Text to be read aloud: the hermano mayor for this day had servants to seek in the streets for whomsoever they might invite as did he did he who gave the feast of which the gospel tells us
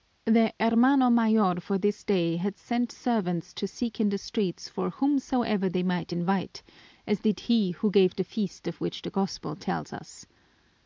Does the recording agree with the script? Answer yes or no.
no